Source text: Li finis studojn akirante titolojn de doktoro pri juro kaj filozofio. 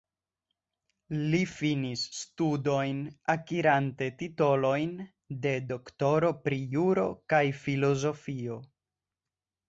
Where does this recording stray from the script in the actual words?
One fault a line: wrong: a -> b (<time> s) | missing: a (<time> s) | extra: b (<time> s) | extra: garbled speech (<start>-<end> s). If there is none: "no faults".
no faults